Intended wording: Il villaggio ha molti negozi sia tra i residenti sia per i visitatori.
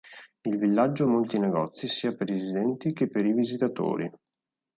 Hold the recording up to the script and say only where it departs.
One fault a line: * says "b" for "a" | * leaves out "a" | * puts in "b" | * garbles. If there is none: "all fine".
* says "per" for "tra"
* says "che" for "sia"